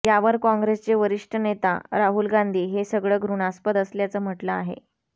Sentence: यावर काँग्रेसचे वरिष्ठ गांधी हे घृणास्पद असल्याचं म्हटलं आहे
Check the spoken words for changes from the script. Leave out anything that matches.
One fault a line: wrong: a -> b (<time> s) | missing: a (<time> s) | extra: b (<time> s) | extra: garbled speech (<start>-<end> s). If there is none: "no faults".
extra: नेता राहुल (1.4 s)
extra: सगळं (2.9 s)